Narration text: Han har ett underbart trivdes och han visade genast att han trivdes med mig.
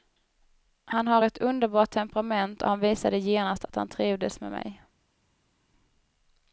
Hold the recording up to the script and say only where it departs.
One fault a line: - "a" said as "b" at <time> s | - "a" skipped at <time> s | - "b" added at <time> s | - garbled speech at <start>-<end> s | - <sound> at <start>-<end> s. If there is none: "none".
- "trivdes" said as "temperament" at 1.9 s